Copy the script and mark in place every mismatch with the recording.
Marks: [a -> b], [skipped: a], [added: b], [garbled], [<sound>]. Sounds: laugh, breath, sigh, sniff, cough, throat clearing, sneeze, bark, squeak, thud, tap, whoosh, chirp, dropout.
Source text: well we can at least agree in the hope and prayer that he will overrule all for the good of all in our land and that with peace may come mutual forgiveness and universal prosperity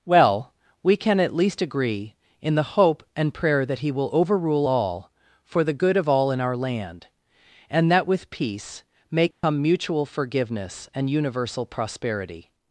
well we can at least agree in the hope and prayer that he will overrule all for the good of all in our land and that with peace may come [dropout] mutual forgiveness and universal prosperity